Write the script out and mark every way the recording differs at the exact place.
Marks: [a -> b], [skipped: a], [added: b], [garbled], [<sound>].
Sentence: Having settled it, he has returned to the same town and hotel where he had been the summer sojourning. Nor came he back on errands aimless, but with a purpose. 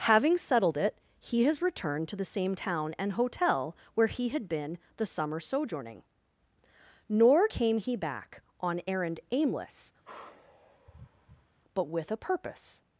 Having settled it, he has returned to the same town and hotel where he had been the summer sojourning. Nor came he back on [errands -> errand] aimless, [sigh] but with a purpose.